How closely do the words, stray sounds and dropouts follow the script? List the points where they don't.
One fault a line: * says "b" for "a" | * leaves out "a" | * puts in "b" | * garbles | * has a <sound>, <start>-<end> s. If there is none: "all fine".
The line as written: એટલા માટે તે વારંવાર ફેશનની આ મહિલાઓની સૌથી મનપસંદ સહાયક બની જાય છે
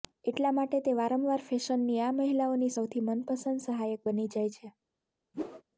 * has a whoosh, 5.3-5.6 s